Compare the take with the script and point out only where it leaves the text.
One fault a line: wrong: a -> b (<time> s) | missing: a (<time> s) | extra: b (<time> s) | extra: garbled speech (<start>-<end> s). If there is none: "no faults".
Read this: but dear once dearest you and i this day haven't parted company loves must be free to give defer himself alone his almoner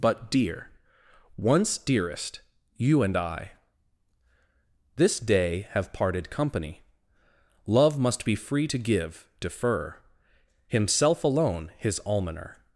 wrong: haven't -> have (5.7 s)
wrong: loves -> love (7.7 s)